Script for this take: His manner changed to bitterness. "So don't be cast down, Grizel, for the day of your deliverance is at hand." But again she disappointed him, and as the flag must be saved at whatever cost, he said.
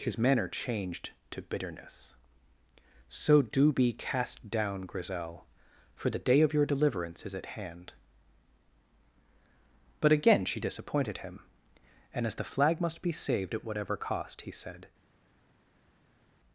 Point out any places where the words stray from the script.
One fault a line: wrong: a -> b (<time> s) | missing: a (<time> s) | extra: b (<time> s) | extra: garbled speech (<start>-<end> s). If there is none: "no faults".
wrong: don't -> do (3.4 s)